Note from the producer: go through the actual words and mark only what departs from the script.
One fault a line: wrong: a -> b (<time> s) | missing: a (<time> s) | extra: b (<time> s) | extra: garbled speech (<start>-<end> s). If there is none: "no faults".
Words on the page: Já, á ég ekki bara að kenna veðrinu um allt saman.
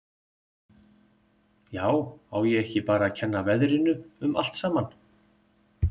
no faults